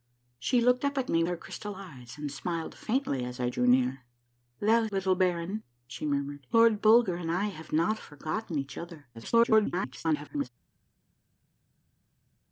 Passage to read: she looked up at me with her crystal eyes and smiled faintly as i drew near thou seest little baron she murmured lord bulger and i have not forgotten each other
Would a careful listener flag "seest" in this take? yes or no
yes